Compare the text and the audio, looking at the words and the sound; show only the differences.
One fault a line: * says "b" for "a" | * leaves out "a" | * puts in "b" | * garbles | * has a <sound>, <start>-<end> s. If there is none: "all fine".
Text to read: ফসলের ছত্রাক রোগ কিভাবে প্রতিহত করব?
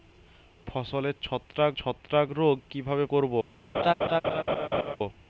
* puts in "ছত্রাক"
* leaves out "প্রতিহত"
* has a laugh, 3.7-5.0 s